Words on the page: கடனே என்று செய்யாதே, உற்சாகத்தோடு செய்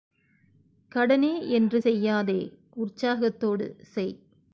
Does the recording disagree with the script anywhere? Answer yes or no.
no